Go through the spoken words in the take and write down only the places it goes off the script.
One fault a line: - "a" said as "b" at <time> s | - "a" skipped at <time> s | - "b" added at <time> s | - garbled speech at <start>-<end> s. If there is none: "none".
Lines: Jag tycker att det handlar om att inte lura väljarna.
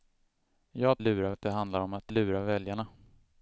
- "tycker" said as "lura" at 1.0 s
- "inte" skipped at 2.1 s